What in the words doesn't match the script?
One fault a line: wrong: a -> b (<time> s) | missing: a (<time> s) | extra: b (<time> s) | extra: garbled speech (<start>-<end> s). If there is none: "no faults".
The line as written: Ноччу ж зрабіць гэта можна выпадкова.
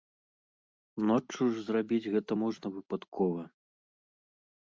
no faults